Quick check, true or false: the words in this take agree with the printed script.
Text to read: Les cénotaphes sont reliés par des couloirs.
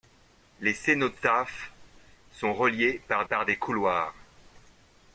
false